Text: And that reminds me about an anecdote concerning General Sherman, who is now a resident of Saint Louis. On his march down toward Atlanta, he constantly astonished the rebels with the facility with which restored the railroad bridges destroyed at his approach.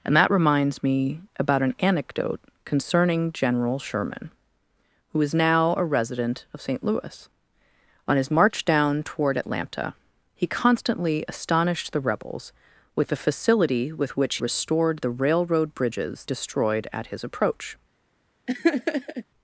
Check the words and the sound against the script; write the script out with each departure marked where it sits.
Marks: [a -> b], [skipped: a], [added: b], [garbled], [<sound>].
And that reminds me about an anecdote concerning General Sherman, who is now a resident of Saint Louis. On his march down toward Atlanta, he constantly astonished the rebels with the facility with which restored the railroad bridges destroyed at his approach. [laugh]